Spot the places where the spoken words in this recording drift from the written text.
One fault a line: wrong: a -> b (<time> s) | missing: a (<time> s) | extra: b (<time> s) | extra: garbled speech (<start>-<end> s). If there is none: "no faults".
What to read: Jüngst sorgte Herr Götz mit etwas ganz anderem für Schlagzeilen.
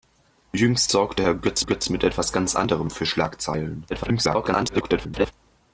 extra: Götz (1.6 s)
extra: garbled speech (3.9-5.3 s)